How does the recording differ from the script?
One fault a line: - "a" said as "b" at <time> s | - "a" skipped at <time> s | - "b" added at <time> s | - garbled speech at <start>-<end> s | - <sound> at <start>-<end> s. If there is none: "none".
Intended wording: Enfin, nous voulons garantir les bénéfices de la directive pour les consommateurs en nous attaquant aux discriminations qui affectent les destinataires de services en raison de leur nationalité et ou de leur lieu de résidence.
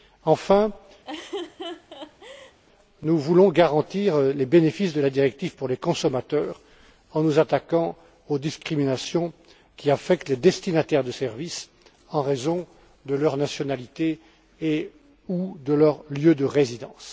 - laugh at 1.0-2.6 s